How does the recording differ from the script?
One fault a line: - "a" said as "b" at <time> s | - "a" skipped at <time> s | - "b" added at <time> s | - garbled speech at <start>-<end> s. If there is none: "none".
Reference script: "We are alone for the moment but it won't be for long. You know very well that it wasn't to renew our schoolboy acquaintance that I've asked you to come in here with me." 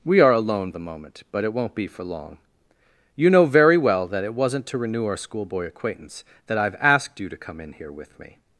- "for" skipped at 0.7 s